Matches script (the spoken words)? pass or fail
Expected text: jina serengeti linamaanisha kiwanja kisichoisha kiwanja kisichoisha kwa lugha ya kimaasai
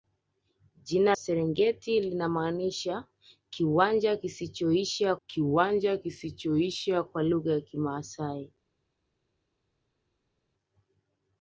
pass